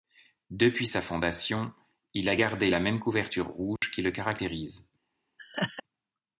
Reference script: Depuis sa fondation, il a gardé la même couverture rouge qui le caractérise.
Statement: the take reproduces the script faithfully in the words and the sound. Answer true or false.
false